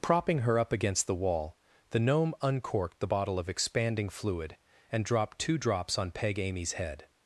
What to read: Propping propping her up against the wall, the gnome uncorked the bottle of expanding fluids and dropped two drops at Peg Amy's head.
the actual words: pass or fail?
fail